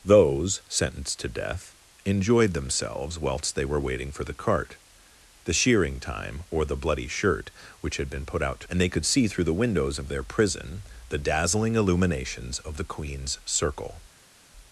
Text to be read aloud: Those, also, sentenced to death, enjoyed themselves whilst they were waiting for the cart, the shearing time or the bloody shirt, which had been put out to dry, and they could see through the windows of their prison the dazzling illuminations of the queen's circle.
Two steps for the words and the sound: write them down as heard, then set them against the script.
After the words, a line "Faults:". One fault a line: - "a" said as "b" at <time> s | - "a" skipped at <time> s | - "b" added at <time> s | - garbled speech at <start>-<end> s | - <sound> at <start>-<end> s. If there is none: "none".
Those, sentenced to death, enjoyed themselves whilst they were waiting for the cart, the shearing time or the bloody shirt, which had been put out to and they could see through the windows of their prison the dazzling illuminations of the queen's circle.
Faults:
- "also" skipped at 0.6 s
- "dry" skipped at 8.7 s